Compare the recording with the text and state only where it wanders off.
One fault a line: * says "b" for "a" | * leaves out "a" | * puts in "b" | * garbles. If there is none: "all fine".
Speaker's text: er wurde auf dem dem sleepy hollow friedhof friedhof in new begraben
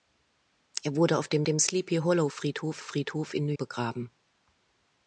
all fine